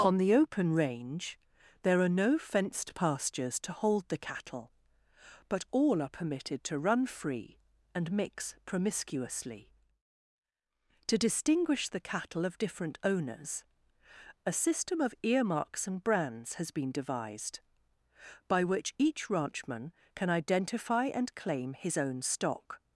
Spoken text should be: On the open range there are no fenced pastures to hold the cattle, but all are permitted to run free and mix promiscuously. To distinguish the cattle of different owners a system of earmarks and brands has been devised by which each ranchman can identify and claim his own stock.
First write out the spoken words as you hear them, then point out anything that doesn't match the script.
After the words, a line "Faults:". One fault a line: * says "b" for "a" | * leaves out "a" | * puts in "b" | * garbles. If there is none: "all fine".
On the open range there are no fenced pastures to hold the cattle, but all are permitted to run free and mix promiscuously. To distinguish the cattle of different owners a system of earmarks and brands has been devised by which each ranchman can identify and claim his own stock.
Faults:
all fine